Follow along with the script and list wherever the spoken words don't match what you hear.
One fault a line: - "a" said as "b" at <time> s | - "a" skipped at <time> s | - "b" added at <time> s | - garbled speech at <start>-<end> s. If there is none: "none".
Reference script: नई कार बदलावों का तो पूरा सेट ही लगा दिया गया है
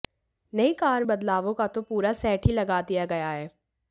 none